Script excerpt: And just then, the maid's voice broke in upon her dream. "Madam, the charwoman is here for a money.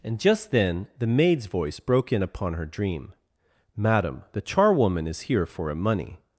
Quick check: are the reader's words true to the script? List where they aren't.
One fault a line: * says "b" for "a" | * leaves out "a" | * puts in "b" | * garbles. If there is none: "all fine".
all fine